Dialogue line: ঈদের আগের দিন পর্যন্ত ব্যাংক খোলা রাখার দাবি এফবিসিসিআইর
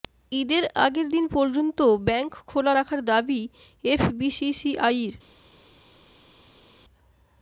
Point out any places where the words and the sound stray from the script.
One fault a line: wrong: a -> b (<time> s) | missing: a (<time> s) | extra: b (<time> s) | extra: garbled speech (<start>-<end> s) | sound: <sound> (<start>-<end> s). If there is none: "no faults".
no faults